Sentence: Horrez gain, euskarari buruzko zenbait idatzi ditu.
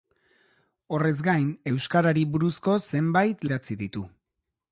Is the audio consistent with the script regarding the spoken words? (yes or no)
yes